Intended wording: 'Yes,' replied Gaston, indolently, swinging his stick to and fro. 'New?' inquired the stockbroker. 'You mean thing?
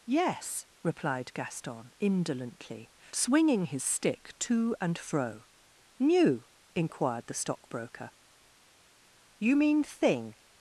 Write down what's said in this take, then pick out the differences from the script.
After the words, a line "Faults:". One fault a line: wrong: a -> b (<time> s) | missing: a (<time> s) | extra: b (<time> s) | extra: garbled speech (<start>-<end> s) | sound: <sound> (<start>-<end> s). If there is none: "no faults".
'Yes,' replied Gaston, indolently, swinging his stick to and fro. 'New?' inquired the stockbroker. 'You mean thing?
Faults:
no faults